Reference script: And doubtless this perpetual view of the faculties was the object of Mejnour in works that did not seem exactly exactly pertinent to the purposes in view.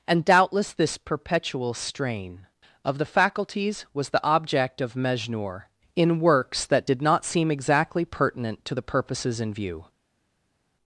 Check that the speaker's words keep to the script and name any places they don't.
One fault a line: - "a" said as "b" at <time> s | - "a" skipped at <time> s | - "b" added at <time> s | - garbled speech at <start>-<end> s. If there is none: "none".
- "view" said as "strain" at 1.7 s
- "exactly" skipped at 8.1 s